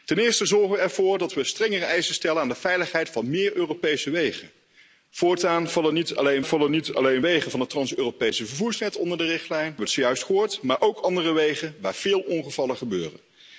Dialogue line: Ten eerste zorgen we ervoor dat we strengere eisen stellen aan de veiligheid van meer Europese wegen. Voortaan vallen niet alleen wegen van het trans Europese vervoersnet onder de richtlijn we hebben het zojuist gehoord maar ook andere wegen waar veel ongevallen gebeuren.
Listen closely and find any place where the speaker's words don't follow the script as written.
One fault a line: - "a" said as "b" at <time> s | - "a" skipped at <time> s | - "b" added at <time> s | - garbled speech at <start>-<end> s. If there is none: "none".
- "vallen niet alleen" added at 6.4 s
- "hebben" skipped at 9.7 s